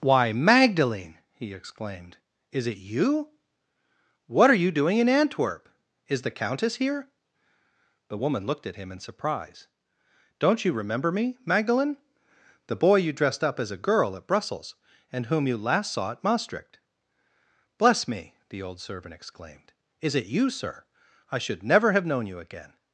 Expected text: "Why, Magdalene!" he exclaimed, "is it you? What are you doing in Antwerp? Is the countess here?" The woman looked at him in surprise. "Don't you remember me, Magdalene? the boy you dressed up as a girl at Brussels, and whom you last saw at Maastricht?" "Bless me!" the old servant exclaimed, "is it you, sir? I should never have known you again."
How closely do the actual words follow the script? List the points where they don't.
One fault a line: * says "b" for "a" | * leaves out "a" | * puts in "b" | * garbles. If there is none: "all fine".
all fine